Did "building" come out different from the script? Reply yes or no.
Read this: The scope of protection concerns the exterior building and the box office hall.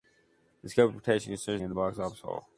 yes